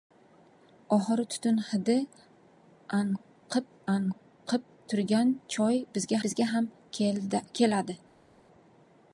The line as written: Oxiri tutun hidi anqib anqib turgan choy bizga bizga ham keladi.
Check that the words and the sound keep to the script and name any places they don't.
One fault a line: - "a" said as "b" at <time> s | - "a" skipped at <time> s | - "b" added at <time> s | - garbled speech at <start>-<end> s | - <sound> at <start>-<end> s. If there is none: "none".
none